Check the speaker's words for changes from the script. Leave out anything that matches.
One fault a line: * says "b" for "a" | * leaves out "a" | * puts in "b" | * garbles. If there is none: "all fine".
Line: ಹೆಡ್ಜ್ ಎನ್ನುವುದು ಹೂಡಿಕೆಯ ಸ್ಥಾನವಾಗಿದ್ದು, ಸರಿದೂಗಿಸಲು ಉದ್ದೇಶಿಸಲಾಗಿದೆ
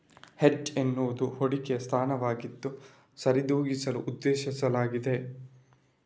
all fine